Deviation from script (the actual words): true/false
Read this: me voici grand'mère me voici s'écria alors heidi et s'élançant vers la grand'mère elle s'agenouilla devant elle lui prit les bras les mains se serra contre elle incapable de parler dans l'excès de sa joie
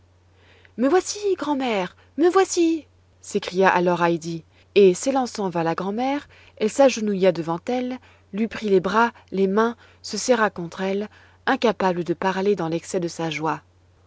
false